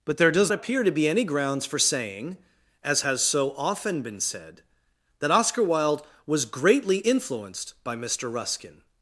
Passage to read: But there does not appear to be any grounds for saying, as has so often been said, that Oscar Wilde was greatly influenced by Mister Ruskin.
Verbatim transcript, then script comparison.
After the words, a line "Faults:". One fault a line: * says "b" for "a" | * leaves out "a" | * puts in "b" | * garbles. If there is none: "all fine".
But there does appear to be any grounds for saying, as has so often been said, that Oscar Wilde was greatly influenced by Mister Ruskin.
Faults:
* leaves out "not"